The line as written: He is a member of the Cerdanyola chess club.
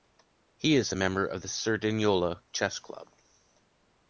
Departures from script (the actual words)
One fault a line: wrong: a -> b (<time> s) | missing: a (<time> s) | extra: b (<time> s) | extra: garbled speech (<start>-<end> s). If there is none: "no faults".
no faults